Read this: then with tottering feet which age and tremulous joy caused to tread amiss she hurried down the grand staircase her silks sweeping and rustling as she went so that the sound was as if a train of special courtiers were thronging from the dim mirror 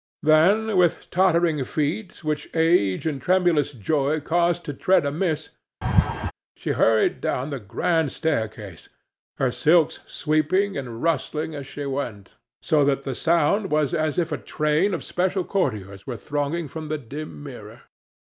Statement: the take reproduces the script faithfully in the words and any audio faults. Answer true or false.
false